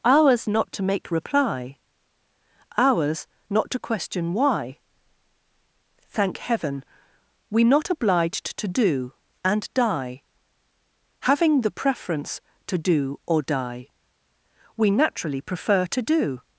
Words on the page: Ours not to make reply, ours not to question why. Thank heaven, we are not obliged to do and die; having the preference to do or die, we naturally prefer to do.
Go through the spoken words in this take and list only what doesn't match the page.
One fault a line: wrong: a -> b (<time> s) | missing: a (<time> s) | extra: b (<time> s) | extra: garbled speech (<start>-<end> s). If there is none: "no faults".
missing: are (7.7 s)